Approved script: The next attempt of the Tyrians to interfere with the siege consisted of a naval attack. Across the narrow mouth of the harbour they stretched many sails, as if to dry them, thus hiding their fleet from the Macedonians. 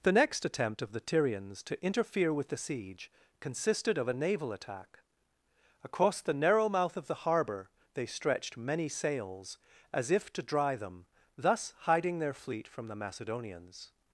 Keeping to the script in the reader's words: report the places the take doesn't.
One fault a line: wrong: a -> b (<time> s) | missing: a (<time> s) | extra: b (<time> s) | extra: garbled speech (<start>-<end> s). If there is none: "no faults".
no faults